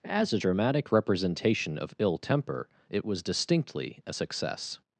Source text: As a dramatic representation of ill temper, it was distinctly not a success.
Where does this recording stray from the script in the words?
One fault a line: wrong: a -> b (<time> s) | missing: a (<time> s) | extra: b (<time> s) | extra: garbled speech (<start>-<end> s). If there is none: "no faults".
missing: not (4.0 s)